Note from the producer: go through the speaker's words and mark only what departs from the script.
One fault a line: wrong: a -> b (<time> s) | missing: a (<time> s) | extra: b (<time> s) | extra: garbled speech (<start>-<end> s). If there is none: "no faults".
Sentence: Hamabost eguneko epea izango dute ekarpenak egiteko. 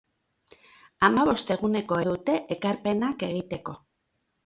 missing: epea izango (2.0 s)